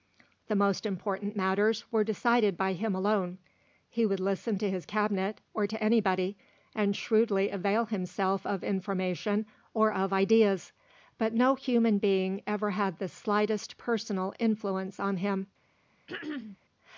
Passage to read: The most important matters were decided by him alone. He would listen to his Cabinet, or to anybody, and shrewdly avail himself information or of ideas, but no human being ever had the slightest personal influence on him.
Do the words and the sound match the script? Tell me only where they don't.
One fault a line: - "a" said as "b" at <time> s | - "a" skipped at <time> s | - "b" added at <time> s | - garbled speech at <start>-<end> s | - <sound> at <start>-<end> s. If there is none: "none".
- "of" added at 8.5 s
- throat clearing at 16.1-16.6 s